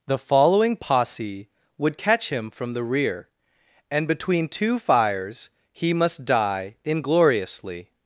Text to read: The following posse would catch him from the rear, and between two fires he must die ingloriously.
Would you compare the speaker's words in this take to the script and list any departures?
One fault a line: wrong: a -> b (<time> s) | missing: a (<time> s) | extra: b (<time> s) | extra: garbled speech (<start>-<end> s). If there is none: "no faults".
no faults